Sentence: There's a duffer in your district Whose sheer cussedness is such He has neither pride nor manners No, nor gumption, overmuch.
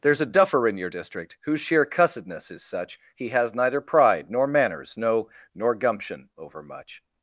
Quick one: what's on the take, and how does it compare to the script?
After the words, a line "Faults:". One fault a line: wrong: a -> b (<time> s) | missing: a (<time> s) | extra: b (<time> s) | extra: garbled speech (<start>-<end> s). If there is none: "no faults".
There's a duffer in your district Whose sheer cussedness is such He has neither pride nor manners No, nor gumption, overmuch.
Faults:
no faults